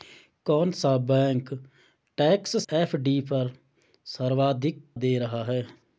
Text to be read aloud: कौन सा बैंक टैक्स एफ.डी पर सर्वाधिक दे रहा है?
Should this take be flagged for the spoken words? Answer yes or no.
no